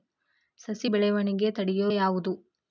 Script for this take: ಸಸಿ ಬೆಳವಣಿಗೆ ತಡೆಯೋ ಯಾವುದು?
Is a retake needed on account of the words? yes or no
no